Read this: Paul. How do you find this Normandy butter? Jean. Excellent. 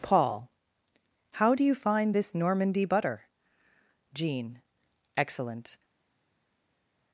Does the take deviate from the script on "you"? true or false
false